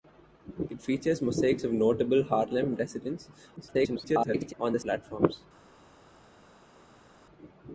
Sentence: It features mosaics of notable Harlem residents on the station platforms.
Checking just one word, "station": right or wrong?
wrong